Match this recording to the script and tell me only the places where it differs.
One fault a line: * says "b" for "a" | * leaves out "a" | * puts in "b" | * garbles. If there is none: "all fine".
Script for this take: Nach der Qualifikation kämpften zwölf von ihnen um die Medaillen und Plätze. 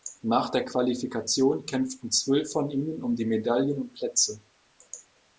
all fine